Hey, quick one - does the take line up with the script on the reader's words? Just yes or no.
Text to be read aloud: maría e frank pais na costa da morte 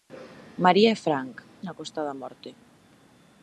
no